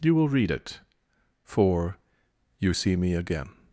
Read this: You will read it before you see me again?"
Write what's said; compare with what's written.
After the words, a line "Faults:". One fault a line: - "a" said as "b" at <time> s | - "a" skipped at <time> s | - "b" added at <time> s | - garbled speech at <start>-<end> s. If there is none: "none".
You will read it for you see me again?"
Faults:
- "before" said as "for" at 1.4 s